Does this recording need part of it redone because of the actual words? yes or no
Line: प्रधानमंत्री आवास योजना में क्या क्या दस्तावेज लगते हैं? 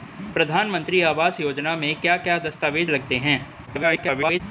yes